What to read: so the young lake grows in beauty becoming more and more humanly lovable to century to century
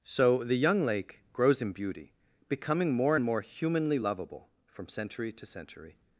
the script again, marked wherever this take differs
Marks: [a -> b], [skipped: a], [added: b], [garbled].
so the young lake grows in beauty becoming more and more humanly lovable [to -> from] century to century